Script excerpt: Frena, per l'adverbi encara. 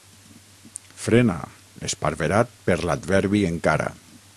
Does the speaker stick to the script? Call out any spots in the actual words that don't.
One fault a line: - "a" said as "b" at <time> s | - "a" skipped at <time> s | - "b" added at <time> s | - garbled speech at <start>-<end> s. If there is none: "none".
- "esparverat" added at 1.9 s